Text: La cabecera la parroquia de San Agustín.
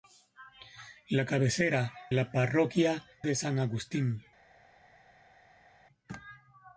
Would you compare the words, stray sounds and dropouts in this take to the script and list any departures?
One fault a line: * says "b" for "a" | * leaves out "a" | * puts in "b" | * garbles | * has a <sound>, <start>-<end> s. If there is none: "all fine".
all fine